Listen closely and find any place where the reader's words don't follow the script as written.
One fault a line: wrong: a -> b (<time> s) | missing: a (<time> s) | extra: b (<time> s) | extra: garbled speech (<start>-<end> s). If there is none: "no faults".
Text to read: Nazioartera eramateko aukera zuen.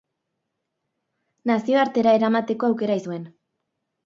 no faults